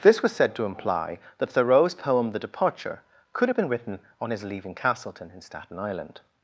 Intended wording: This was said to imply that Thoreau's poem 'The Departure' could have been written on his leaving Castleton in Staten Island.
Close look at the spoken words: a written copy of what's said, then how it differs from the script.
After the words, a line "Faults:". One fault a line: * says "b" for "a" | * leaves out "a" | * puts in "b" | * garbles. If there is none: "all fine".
This was said to imply that Thoreau's poem 'The Departure' could have been written on his leaving Castleton in Staten Island.
Faults:
all fine